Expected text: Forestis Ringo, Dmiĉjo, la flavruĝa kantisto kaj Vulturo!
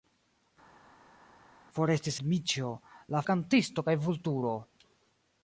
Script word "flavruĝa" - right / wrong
wrong